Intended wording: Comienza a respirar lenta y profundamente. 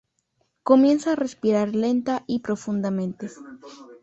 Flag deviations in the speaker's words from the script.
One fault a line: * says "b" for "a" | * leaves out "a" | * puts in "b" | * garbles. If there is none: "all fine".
all fine